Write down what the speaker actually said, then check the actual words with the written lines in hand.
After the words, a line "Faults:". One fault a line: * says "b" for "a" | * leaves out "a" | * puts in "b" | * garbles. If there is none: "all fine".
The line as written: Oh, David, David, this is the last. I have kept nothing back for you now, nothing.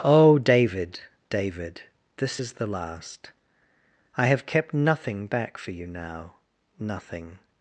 Oh, David, David, this is the last. I have kept nothing back for you now, nothing.
Faults:
all fine